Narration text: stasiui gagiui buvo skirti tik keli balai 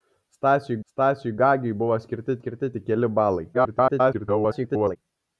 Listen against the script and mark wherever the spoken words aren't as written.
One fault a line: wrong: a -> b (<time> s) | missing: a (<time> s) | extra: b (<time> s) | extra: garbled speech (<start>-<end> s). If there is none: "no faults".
extra: stasiui (0.9 s)
extra: skirti (2.4 s)
extra: garbled speech (3.5-5.0 s)